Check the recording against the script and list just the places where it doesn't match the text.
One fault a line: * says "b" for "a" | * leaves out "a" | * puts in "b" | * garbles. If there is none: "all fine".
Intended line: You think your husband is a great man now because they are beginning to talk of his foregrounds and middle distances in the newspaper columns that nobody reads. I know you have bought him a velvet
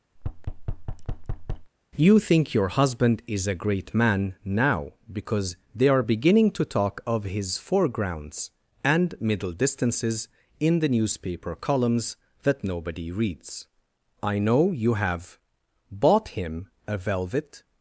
all fine